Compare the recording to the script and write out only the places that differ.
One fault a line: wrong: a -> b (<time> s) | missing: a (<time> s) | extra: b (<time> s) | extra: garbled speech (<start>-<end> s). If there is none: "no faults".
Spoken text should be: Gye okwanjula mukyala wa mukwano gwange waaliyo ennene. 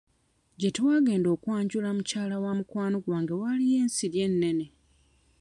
extra: twagenda (0.8 s)
extra: ensiri (3.8 s)